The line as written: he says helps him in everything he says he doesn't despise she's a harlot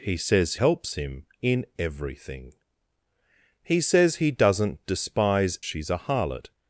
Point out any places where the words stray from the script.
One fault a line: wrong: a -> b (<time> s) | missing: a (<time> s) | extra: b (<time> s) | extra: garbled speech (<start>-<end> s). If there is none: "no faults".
no faults